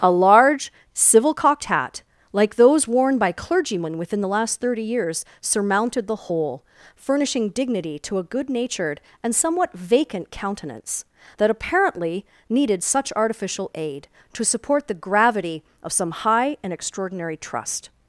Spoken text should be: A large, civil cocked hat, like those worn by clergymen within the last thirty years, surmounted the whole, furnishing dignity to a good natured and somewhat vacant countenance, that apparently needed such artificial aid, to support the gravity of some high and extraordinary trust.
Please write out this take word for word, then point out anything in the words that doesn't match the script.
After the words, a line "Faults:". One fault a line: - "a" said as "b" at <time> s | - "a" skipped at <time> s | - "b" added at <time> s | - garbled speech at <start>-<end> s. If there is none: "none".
A large, civil cocked hat, like those worn by clergymen within the last thirty years, surmounted the whole, furnishing dignity to a good natured and somewhat vacant countenance, that apparently needed such artificial aid, to support the gravity of some high and extraordinary trust.
Faults:
none